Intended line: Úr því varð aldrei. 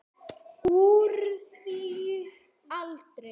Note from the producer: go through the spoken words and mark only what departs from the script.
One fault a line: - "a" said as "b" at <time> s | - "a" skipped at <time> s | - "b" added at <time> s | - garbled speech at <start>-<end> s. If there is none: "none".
- "varð" skipped at 1.8 s